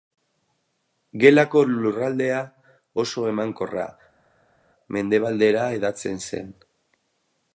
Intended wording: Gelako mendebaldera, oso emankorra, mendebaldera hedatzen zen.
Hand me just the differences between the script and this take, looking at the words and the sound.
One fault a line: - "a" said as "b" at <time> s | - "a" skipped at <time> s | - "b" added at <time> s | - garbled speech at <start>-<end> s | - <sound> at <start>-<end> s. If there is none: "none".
- "mendebaldera" said as "lurraldea" at 1.7 s